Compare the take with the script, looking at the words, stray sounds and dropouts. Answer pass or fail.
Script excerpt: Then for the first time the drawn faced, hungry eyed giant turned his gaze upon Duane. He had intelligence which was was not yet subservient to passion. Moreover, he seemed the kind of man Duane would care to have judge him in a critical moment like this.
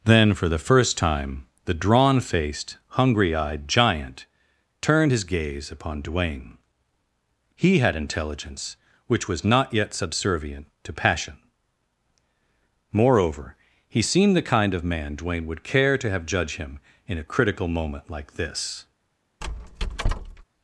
fail